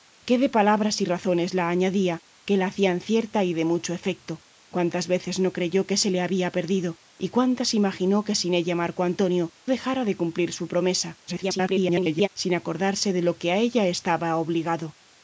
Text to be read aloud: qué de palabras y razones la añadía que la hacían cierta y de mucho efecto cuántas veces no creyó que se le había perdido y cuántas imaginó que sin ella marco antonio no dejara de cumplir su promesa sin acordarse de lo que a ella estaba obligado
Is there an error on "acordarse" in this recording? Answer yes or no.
no